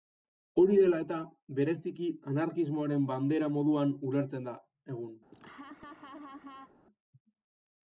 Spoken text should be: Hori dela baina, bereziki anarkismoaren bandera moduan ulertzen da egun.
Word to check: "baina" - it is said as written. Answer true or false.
false